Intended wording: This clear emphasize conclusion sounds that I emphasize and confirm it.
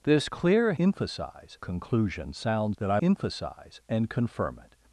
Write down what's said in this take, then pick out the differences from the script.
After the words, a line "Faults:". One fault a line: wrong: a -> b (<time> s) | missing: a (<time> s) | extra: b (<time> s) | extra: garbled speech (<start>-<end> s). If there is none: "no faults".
This clear emphasize conclusion sounds that I emphasize and confirm it.
Faults:
no faults